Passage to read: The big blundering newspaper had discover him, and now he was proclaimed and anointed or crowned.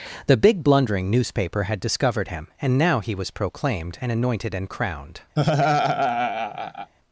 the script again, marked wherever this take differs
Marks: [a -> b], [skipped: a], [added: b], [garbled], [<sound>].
The big blundering newspaper had [discover -> discovered] him, and now he was proclaimed and anointed [or -> and] crowned. [laugh]